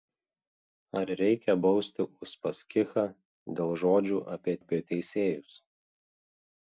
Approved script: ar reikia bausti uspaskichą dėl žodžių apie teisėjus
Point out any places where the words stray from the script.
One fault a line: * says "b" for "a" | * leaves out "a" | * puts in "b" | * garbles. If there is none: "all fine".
* puts in "apie"